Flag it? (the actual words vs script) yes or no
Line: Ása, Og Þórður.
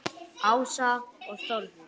no